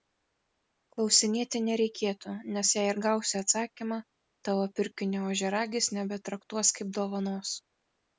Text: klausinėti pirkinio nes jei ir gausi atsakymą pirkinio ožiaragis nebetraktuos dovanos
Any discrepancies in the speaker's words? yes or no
yes